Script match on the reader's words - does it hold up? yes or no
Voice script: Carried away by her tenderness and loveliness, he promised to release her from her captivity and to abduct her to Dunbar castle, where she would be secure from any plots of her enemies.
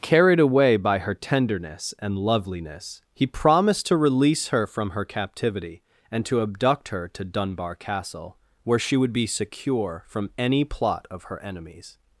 no